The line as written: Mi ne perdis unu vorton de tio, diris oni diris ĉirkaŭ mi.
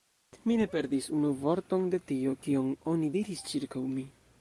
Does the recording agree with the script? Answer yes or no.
no